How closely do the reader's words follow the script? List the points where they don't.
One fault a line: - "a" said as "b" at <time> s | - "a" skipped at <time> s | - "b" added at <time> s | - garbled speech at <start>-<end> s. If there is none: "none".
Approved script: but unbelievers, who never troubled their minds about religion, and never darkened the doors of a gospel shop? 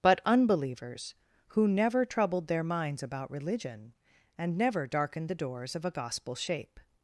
- "shop" said as "shape" at 6.4 s